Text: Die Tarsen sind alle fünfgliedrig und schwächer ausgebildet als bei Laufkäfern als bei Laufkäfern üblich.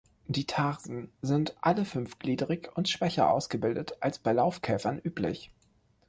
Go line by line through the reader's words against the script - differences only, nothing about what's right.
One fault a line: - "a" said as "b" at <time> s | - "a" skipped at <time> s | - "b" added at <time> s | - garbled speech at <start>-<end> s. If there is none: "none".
- "als bei Laufkäfern" skipped at 5.0 s